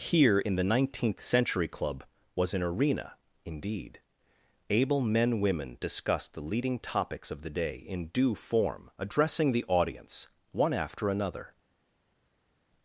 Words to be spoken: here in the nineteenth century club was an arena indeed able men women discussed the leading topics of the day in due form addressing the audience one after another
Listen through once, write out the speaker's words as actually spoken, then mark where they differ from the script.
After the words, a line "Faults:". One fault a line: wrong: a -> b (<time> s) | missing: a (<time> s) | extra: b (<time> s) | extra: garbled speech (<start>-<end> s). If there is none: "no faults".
here in the nineteenth century club was an arena indeed able men women discussed the leading topics of the day in due form addressing the audience one after another
Faults:
no faults